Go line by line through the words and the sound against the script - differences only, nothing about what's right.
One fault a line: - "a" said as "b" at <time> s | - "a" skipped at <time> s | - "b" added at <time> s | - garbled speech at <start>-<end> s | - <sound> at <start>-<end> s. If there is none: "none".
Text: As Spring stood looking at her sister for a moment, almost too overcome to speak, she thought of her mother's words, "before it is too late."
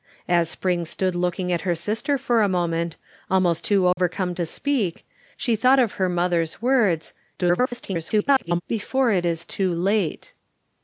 - dropout at 3.9-4.0 s
- garbled speech at 7.4-8.6 s